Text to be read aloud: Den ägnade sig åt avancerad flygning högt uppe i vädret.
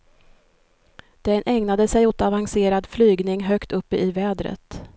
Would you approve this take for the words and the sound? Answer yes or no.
yes